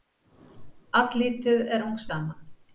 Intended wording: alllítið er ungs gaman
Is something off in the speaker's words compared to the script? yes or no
no